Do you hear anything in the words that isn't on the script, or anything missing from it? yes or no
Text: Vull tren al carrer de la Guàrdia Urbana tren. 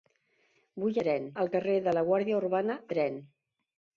no